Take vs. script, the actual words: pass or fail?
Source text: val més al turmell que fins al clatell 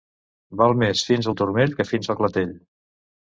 fail